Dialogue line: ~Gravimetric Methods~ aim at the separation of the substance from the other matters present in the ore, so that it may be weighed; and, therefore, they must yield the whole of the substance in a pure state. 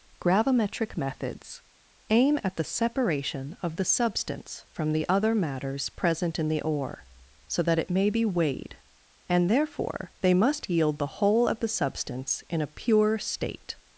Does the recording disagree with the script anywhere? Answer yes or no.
no